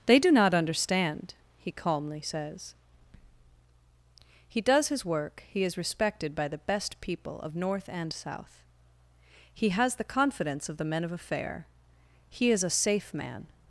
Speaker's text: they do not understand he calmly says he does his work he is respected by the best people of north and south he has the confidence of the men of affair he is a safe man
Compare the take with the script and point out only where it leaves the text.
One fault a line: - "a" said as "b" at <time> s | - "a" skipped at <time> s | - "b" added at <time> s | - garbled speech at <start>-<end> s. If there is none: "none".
none